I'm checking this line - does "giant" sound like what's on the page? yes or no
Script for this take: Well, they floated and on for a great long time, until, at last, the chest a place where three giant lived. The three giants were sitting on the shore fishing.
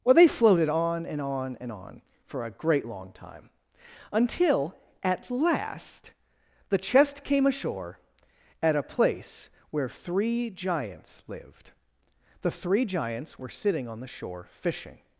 no